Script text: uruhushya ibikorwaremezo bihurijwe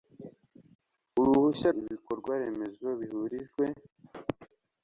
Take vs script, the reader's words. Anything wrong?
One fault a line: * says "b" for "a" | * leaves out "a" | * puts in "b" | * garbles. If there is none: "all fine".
all fine